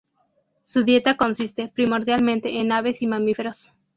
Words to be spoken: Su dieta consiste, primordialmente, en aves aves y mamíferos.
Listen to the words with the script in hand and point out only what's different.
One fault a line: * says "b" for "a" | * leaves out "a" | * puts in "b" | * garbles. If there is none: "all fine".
* leaves out "aves"